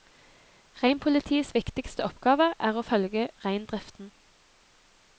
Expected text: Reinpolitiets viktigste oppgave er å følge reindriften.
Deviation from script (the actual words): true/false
false